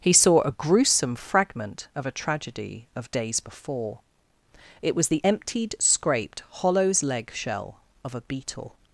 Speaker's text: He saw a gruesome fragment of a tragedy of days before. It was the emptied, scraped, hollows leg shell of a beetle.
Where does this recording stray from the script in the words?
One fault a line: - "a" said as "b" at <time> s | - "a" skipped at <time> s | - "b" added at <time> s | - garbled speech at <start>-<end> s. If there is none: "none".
none